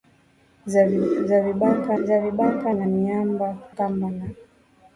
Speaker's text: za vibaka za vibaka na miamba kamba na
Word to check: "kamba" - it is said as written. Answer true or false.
true